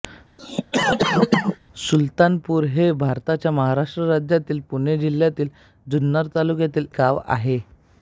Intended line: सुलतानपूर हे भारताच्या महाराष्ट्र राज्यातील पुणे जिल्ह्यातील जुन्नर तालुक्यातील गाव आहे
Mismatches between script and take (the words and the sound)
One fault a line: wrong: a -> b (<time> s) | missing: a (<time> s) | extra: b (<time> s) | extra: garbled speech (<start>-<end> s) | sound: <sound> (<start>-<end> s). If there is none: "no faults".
sound: cough (0.4-1.6 s)